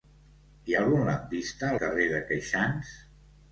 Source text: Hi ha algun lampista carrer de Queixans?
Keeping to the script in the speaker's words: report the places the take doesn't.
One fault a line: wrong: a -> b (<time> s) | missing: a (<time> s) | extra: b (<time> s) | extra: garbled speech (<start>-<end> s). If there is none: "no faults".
no faults